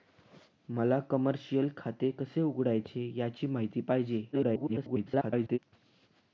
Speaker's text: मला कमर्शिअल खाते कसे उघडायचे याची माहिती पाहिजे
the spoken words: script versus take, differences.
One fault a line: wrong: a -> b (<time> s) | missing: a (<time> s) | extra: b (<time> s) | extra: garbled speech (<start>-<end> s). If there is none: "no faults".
extra: garbled speech (4.3-5.6 s)